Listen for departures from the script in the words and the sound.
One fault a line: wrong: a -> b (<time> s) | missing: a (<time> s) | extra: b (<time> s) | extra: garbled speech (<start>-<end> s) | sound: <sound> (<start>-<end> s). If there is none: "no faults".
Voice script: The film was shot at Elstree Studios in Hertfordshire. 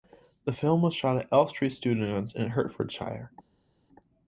no faults